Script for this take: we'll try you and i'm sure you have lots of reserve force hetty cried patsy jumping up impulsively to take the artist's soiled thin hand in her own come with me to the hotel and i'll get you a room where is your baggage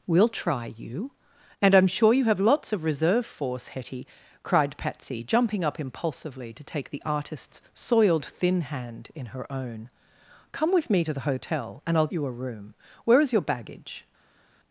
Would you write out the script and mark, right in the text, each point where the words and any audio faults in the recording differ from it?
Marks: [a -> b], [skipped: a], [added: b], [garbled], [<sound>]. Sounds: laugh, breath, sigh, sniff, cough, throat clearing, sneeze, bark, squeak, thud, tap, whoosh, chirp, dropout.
we'll try you and i'm sure you have lots of reserve force hetty cried patsy jumping up impulsively to take the artist's soiled thin hand in her own come with me to the hotel and i'll [skipped: get] you a room where is your baggage